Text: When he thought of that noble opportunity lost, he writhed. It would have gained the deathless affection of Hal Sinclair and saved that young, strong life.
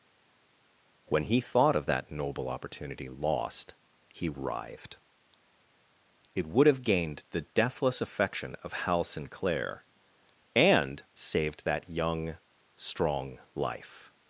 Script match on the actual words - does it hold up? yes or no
yes